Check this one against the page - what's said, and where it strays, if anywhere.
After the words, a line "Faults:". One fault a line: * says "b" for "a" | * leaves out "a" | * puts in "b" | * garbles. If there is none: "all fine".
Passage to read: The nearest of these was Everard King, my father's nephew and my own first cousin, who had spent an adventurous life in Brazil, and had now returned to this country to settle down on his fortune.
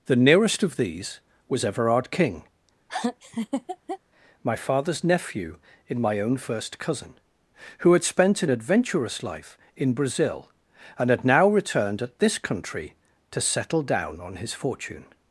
The nearest of these was Everard King, my father's nephew in my own first cousin, who had spent an adventurous life in Brazil, and had now returned at this country to settle down on his fortune.
Faults:
* says "in" for "and"
* says "at" for "to"